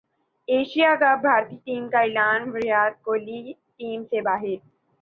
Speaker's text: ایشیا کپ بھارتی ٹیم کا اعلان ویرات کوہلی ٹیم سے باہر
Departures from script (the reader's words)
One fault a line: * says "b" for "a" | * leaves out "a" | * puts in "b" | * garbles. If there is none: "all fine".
all fine